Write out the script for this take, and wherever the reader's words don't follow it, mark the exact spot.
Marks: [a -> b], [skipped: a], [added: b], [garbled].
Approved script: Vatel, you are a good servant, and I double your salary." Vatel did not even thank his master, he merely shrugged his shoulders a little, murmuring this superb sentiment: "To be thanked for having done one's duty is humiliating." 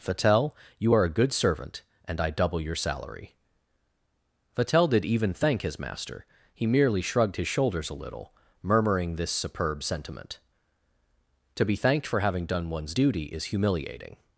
Vatel, you are a good servant, and I double your salary." Vatel did [skipped: not] even thank his master, he merely shrugged his shoulders a little, murmuring this superb sentiment: "To be thanked for having done one's duty is humiliating."